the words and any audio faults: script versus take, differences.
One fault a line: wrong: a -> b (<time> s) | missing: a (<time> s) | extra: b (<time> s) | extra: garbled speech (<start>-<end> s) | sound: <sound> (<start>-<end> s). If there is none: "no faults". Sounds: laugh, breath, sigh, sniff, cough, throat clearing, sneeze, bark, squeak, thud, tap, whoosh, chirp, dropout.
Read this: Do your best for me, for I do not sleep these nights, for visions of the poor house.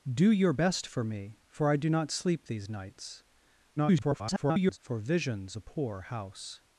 extra: garbled speech (3.8-4.8 s)
missing: of (5.5 s)